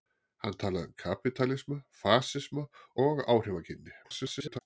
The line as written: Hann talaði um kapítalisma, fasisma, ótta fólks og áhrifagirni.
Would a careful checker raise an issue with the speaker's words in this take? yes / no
yes